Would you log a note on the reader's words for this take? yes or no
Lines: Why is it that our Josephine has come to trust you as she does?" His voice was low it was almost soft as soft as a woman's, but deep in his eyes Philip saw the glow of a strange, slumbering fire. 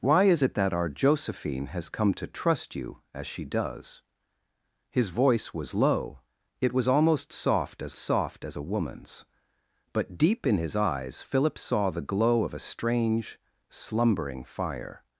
no